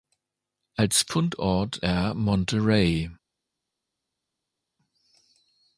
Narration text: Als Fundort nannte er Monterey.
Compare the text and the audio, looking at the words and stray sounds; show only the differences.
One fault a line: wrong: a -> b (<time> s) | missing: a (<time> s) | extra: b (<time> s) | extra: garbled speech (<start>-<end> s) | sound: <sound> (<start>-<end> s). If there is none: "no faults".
missing: nannte (1.8 s)